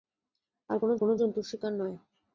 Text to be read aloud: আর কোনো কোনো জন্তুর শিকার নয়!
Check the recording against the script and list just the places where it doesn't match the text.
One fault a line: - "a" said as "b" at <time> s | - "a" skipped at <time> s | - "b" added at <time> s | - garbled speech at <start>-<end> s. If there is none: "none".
none